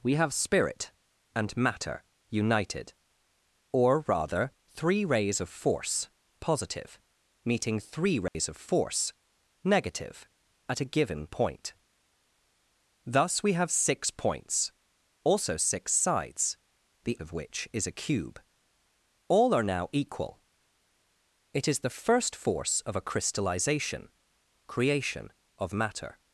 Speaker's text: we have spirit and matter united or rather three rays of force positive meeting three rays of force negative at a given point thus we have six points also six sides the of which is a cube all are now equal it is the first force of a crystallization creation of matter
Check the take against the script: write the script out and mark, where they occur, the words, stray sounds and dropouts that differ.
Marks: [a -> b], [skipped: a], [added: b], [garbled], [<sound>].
we have spirit and matter united or rather three rays of force positive meeting three rays [dropout] of force negative at a given point thus we have six points also six sides the of which is a cube all are now equal it is the first force of a crystallization creation of matter